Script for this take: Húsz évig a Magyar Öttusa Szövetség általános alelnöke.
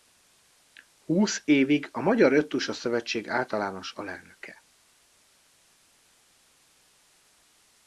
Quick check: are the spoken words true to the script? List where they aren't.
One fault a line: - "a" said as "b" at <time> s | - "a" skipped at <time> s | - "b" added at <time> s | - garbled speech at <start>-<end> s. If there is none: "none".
none